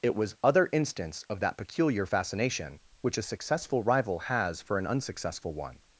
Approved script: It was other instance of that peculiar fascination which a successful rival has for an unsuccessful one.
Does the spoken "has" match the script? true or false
true